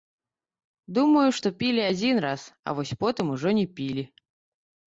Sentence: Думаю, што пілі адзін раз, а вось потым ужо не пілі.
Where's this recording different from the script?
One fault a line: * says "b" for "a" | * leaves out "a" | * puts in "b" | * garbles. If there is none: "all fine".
all fine